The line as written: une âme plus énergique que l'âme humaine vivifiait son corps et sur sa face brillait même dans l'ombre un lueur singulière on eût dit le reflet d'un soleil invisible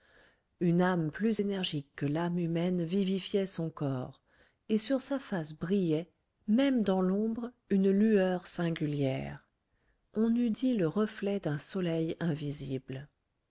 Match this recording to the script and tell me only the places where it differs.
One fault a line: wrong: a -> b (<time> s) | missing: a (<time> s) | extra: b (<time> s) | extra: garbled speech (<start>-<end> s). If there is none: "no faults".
wrong: un -> une (7.7 s)